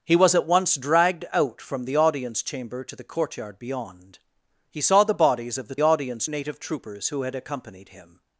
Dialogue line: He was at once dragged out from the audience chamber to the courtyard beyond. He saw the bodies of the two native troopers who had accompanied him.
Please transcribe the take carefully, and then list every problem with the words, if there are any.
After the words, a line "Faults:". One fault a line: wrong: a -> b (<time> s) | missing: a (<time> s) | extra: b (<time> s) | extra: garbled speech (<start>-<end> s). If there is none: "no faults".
He was at once dragged out from the audience chamber to the courtyard beyond. He saw the bodies of the audience native troopers who had accompanied him.
Faults:
wrong: two -> audience (5.8 s)